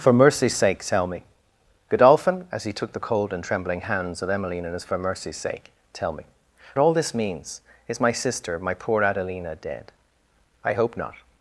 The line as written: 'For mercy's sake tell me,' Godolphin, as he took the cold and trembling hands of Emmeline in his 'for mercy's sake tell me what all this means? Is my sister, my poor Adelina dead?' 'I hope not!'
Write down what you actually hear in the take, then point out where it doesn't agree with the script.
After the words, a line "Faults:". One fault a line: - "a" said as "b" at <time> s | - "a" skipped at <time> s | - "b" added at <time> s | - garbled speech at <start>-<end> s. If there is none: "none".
'For mercy's sake tell me,' Godolphin, as he took the cold and trembling hands of Emmeline in his 'for mercy's sake tell me all this means? Is my sister, my poor Adelina dead?' 'I hope not!'
Faults:
- "what" skipped at 6.2 s